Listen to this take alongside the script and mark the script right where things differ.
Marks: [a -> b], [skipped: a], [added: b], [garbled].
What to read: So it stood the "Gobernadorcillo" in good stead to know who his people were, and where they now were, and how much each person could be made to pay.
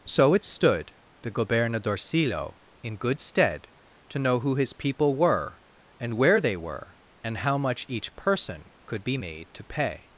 So it stood the "Gobernadorcillo" in good stead to know who his people were, and where they [skipped: now] were, and how much each person could be made to pay.